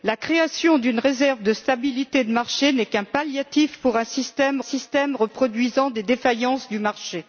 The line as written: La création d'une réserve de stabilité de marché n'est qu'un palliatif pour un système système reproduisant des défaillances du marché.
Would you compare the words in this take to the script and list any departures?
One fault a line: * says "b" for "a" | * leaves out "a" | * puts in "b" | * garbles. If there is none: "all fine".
all fine